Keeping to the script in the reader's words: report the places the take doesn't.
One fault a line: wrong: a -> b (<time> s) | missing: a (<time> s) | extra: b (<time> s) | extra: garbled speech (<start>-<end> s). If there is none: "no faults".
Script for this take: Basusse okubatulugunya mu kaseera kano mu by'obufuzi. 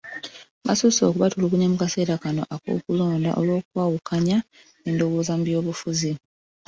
extra: ak'okulonda olw'okwawukanya endowooza (2.5 s)